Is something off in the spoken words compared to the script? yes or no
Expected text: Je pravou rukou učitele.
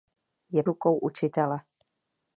yes